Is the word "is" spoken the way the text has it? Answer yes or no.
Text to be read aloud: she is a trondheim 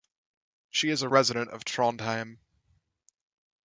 yes